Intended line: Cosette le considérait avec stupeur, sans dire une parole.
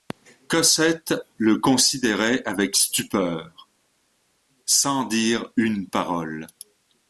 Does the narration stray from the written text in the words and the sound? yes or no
no